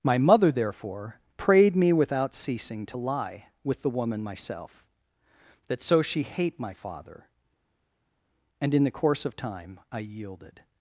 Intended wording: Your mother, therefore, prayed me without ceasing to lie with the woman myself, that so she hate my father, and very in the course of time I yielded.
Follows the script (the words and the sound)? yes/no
no